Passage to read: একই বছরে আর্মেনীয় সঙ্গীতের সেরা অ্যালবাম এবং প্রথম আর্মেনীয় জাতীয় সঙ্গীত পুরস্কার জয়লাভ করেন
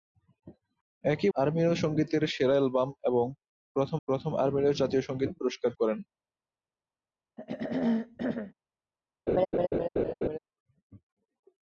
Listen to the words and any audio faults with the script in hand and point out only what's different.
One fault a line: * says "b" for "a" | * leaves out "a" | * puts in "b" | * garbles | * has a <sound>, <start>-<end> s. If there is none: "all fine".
* leaves out "বছরে"
* puts in "প্রথম"
* leaves out "জয়লাভ"
* has a throat clearing, 7.4-8.5 s
* has a laugh, 9.3-10.4 s